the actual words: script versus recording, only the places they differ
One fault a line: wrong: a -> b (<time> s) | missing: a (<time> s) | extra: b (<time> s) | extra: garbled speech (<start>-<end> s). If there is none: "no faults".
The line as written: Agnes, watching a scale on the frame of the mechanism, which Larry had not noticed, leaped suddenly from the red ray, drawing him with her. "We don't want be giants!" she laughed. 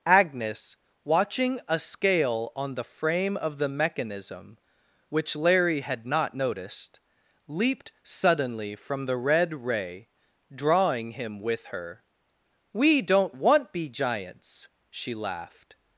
no faults